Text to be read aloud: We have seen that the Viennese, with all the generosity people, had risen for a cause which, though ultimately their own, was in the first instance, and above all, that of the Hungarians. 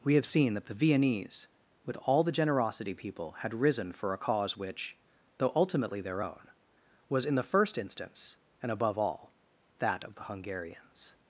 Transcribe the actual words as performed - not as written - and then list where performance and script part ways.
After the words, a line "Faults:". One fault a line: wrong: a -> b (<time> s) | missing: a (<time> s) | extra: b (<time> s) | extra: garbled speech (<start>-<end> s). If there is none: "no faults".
We have seen that the Viennese, with all the generosity people, had risen for a cause which, though ultimately their own, was in the first instance, and above all, that of the Hungarians.
Faults:
no faults